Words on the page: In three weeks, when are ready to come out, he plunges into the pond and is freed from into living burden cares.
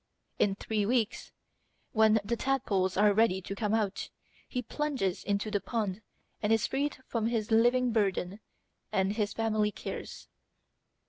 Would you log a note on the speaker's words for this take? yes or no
yes